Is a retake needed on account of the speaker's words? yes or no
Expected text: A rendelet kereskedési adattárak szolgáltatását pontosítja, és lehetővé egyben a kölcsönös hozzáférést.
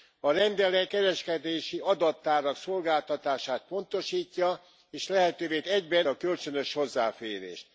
no